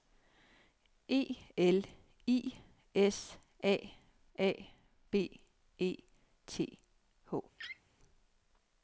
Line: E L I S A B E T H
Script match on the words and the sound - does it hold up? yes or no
no